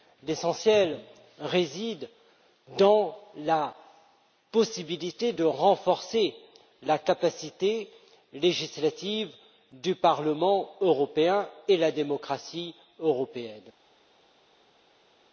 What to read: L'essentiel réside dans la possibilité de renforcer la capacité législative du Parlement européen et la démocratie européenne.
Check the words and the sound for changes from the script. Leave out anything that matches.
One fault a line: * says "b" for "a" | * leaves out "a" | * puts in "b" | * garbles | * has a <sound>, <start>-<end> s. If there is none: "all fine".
all fine